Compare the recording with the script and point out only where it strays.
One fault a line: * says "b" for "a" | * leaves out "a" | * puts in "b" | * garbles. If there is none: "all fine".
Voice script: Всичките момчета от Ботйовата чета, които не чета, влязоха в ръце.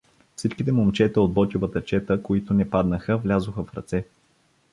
* says "паднаха" for "чета"